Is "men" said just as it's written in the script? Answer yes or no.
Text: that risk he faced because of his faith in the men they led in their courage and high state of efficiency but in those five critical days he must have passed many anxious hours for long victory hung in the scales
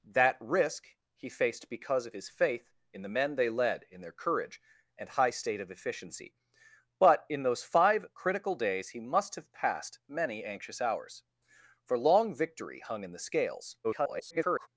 yes